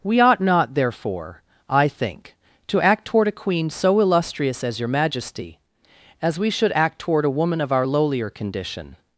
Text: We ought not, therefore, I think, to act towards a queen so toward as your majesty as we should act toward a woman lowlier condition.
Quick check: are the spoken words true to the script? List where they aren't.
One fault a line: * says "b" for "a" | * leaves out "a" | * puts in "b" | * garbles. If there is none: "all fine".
* says "toward" for "towards"
* says "illustrious" for "toward"
* puts in "of our"